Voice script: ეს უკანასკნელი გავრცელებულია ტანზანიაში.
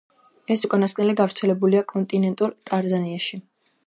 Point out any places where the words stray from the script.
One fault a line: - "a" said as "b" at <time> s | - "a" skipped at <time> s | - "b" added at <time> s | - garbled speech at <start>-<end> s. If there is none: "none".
- "კონტინენტურ" added at 1.9 s